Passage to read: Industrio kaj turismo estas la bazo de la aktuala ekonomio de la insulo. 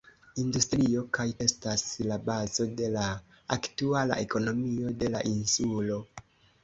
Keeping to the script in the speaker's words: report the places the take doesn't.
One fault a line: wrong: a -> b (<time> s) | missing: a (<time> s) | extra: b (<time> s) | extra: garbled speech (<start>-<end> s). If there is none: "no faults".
missing: turismo (1.2 s)